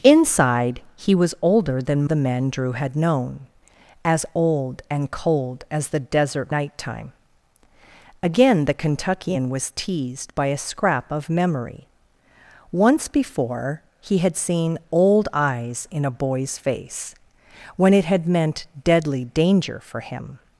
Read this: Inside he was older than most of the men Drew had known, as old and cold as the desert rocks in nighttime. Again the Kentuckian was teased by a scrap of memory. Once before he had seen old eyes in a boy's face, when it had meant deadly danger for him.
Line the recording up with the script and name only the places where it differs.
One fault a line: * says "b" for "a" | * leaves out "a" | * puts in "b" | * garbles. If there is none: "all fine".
* leaves out "most of"
* leaves out "rocks in"